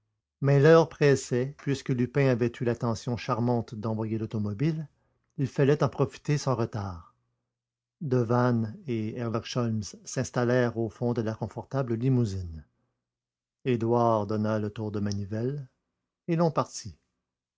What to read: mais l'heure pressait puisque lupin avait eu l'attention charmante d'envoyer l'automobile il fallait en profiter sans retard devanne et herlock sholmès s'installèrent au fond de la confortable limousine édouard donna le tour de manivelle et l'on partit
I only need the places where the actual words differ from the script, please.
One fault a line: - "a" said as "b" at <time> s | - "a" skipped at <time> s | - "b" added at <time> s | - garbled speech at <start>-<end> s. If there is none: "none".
none